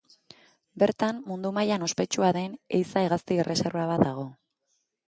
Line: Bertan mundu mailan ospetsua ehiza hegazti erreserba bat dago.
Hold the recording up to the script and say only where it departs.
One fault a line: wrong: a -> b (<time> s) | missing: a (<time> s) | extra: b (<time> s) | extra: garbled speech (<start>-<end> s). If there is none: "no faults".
extra: den (2.4 s)